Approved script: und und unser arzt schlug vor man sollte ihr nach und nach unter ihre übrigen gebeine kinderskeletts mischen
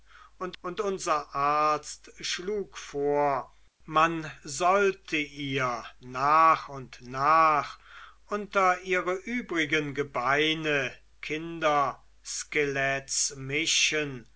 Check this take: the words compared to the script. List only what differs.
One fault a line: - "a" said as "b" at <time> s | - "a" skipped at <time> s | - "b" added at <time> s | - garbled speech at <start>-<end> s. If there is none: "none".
none